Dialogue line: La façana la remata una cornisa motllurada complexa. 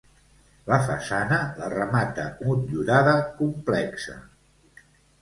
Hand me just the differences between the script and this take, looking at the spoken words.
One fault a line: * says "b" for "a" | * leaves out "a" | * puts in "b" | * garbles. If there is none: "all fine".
* leaves out "una cornisa"